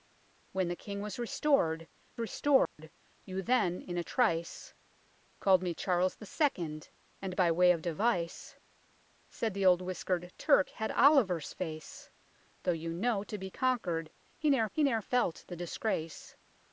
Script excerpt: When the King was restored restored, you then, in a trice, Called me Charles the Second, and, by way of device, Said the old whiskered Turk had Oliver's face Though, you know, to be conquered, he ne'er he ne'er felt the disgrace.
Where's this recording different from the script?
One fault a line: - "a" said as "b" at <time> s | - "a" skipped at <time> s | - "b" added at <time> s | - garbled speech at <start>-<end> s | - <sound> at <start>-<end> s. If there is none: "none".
- dropout at 2.7-2.8 s